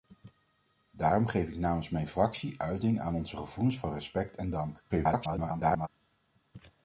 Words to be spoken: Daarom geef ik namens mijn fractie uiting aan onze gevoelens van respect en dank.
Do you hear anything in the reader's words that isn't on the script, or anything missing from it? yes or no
yes